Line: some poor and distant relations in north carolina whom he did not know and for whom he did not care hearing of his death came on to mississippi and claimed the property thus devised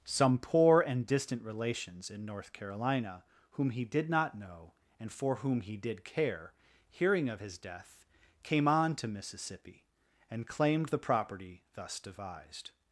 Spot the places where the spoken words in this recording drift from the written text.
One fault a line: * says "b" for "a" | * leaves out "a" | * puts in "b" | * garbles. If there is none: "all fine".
* leaves out "not"